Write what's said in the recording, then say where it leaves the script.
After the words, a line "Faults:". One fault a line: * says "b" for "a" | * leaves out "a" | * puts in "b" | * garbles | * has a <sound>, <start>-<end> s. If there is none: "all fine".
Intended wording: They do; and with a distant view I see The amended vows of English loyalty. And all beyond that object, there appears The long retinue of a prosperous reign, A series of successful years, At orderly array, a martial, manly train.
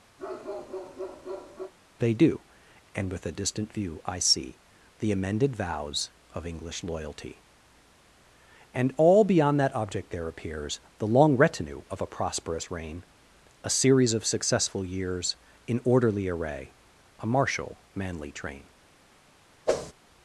They do; and with a distant view I see The amended vows of English loyalty. And all beyond that object, there appears The long retinue of a prosperous reign, A series of successful years, In orderly array, a martial, manly train.
Faults:
* has a bark, 0.2-1.7 s
* says "In" for "At"
* has a whoosh, 19.7-19.9 s